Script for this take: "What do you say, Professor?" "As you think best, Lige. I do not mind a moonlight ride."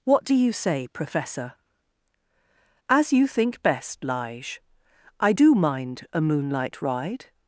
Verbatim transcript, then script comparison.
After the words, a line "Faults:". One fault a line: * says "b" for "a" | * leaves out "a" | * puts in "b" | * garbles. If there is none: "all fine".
"What do you say, Professor?" "As you think best, Lige. I do mind a moonlight ride."
Faults:
* leaves out "not"